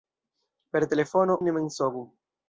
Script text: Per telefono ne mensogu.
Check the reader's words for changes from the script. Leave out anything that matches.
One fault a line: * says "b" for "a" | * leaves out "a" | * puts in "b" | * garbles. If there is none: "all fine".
all fine